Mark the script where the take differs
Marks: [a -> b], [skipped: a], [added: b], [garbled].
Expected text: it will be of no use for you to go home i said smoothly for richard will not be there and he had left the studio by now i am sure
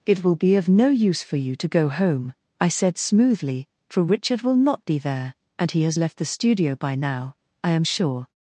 it will be of no use for you to go home i said smoothly for richard will not be there and he [had -> has] left the studio by now i am sure